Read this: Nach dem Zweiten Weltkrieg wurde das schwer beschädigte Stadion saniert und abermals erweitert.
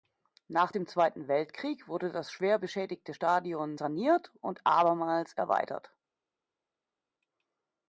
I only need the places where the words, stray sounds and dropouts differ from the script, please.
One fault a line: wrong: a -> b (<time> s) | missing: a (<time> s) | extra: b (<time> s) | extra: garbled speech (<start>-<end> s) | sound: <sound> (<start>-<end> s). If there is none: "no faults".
no faults